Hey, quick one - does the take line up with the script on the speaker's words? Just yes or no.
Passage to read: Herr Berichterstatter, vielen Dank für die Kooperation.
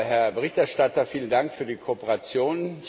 yes